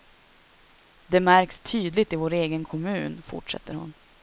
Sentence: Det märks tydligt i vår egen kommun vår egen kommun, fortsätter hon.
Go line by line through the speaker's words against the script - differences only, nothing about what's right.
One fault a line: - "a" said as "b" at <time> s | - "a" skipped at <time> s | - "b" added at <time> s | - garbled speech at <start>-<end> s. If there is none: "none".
- "vår egen kommun" skipped at 3.2 s